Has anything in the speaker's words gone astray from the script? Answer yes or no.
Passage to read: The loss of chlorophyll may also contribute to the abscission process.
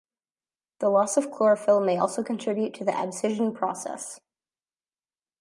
no